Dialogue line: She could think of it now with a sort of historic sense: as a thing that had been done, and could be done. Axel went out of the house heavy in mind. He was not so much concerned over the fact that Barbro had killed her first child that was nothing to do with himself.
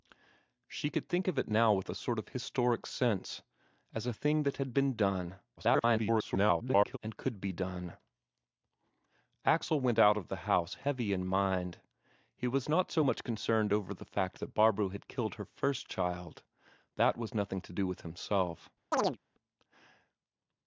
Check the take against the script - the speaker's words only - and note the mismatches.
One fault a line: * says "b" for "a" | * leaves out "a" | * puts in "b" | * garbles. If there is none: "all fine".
* garbles